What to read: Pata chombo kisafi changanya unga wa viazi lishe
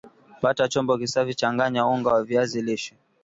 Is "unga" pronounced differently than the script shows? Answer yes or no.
no